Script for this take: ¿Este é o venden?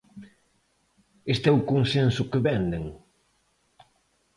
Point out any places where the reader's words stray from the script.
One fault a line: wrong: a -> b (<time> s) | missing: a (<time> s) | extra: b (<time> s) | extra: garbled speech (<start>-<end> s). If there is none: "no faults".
extra: consenso que (1.7 s)